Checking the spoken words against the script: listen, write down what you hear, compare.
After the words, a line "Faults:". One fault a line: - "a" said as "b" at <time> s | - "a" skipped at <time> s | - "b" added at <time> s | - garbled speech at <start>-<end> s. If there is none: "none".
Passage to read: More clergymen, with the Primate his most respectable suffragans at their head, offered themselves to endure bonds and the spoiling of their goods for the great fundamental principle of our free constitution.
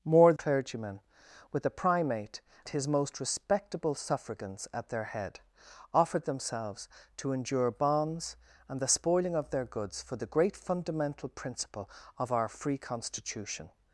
More clergymen, with the Primate his most respectable suffragans at their head, offered themselves to endure bonds and the spoiling of their goods for the great fundamental principle of our free constitution.
Faults:
none